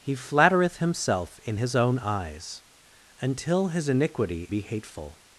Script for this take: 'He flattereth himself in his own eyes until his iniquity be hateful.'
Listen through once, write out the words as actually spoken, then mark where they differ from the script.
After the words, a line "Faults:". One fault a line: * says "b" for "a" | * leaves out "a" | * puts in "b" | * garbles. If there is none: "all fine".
'He flattereth himself in his own eyes until his iniquity be hateful.'
Faults:
all fine